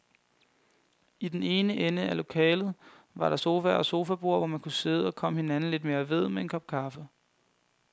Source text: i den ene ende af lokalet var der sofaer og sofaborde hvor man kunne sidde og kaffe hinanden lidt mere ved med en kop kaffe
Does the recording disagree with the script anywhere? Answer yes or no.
yes